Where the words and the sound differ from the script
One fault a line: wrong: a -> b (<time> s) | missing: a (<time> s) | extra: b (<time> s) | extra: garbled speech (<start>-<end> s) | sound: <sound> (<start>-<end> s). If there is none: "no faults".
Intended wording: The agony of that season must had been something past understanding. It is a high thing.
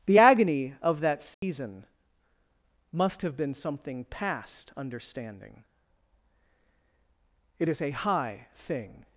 sound: dropout (1.3-1.4 s)
wrong: had -> have (3.2 s)